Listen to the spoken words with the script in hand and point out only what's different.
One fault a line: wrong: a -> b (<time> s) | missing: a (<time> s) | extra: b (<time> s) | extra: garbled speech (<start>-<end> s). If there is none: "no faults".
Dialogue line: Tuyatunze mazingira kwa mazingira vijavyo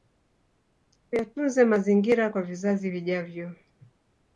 wrong: mazingira -> vizazi (2.4 s)